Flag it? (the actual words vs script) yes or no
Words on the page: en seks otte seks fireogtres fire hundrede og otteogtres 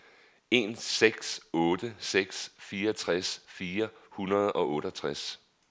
no